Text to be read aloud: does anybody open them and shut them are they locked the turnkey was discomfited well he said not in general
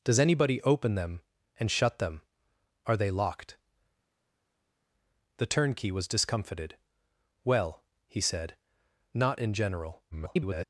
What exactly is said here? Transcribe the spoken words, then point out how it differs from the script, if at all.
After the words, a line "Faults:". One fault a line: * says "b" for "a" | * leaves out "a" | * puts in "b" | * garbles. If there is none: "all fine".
does anybody open them and shut them are they locked the turnkey was discomfited well he said not in general [garbled]
Faults:
* garbles